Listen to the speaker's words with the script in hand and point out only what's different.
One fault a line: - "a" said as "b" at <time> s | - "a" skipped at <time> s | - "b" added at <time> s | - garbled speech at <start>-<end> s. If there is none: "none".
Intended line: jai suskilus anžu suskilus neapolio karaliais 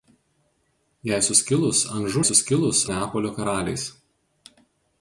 none